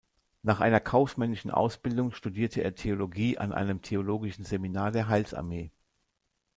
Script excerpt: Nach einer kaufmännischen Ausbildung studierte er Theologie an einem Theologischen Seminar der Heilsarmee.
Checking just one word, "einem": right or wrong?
right